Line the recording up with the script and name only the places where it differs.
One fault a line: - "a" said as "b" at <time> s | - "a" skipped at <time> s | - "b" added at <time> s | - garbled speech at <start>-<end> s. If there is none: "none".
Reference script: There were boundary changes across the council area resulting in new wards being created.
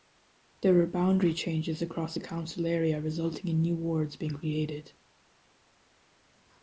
none